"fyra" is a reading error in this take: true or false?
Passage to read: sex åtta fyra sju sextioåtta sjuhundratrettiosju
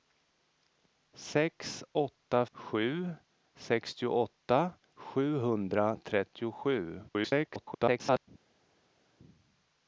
true